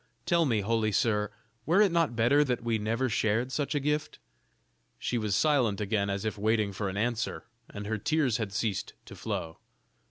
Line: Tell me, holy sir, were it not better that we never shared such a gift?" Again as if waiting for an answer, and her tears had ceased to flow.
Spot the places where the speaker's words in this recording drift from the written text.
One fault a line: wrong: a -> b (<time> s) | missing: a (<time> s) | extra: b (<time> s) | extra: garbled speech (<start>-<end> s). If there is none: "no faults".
extra: She was silent (5.0 s)